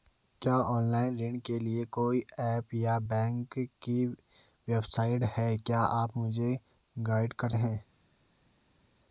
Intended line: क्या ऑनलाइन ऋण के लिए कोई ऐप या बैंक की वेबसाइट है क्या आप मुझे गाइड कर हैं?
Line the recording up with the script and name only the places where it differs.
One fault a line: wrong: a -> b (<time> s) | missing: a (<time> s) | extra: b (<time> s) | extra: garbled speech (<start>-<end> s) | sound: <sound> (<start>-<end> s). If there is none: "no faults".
no faults